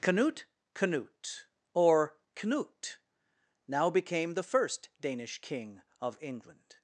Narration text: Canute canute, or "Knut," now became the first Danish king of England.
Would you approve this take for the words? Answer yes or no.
yes